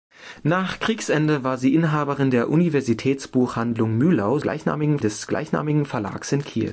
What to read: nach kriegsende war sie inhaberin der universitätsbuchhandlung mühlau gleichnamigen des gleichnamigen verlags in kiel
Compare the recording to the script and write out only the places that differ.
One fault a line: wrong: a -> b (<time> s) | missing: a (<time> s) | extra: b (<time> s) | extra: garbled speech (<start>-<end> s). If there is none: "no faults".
no faults